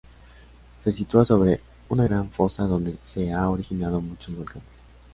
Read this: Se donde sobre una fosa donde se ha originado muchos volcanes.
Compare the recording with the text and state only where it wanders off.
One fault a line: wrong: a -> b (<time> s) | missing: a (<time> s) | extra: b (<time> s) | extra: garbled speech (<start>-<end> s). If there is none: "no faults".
wrong: donde -> sitúa (0.9 s)
extra: gran (2.0 s)